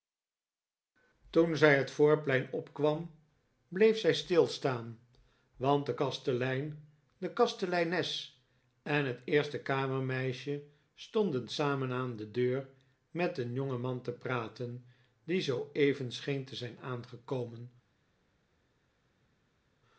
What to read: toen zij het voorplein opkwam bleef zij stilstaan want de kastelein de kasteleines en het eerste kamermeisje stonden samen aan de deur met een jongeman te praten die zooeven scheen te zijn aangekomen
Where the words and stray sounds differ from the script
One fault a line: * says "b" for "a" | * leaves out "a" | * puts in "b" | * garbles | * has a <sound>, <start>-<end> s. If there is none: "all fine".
all fine